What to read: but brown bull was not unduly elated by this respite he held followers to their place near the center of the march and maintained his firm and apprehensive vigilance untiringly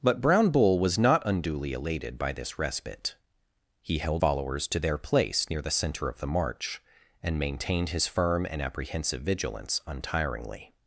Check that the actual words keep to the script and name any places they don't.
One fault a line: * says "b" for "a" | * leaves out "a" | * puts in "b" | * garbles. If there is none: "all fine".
all fine